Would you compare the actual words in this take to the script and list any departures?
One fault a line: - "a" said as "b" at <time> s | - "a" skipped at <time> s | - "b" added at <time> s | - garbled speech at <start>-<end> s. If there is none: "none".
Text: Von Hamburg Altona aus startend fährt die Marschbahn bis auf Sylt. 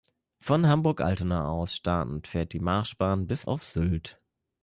none